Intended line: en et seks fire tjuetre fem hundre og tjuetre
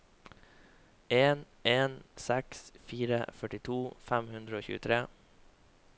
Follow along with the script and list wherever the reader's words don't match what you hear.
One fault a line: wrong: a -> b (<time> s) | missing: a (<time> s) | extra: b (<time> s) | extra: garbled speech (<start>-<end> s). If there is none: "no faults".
wrong: et -> en (1.7 s)
wrong: tjuetre -> førtito (3.4 s)